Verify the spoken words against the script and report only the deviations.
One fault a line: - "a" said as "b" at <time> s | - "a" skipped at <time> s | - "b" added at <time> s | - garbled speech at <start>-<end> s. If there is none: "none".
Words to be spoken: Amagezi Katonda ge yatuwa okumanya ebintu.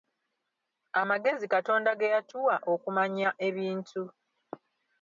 none